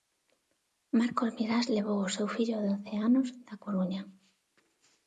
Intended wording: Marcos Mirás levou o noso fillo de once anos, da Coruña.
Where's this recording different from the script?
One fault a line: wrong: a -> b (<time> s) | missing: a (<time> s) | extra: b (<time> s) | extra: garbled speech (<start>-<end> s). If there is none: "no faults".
wrong: noso -> seu (2.1 s)